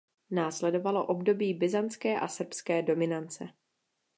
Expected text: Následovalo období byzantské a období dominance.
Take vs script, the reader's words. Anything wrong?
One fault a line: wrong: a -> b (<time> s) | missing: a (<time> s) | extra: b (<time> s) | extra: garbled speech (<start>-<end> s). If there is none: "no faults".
wrong: období -> srbské (2.3 s)